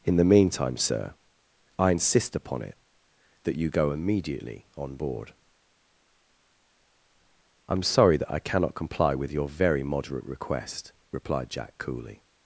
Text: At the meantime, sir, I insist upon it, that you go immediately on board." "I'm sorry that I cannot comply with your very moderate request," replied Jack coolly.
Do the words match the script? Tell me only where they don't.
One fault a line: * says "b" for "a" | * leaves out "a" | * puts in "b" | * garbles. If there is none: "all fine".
* says "In" for "At"